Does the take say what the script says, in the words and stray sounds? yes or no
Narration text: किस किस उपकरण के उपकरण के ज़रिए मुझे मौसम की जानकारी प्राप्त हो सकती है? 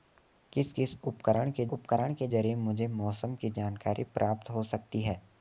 yes